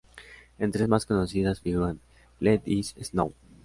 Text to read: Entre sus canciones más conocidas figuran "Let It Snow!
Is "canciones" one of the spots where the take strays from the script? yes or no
yes